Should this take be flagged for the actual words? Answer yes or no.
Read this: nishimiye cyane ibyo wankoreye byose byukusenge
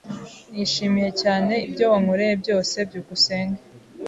no